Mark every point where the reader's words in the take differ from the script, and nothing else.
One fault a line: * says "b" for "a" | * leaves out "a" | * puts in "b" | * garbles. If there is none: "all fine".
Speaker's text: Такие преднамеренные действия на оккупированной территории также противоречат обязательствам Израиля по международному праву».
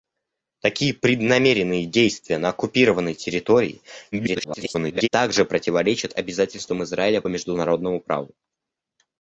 * garbles